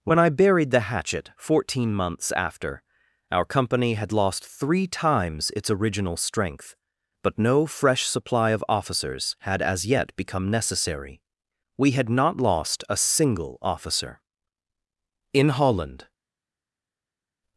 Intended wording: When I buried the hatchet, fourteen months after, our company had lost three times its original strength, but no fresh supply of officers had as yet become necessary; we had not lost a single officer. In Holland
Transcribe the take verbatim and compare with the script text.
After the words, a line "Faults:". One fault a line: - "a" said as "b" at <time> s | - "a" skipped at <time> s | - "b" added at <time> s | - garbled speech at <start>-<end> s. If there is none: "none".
When I buried the hatchet, fourteen months after, our company had lost three times its original strength, but no fresh supply of officers had as yet become necessary; we had not lost a single officer. In Holland
Faults:
none